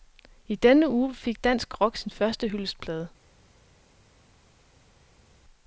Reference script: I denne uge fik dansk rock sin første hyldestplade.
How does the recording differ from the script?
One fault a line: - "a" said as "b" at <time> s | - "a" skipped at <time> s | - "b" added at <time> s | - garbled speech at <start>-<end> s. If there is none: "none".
none